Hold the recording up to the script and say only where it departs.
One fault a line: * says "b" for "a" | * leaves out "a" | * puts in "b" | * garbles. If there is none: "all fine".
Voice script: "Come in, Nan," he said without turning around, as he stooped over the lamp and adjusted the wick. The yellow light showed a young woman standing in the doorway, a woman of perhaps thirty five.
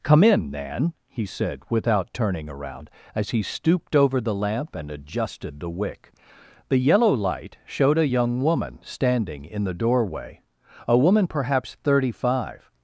* leaves out "of"